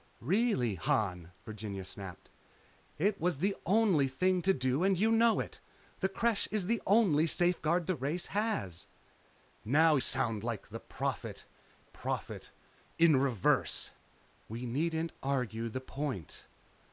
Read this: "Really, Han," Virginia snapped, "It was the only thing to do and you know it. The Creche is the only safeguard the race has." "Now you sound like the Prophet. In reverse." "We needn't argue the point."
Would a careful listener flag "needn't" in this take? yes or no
no